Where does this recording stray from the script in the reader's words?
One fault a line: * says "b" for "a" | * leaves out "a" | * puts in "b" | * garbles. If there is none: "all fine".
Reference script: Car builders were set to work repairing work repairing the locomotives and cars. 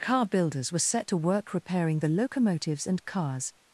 * leaves out "work repairing"